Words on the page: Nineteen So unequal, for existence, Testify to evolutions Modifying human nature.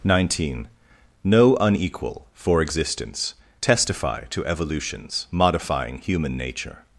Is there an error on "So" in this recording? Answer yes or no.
yes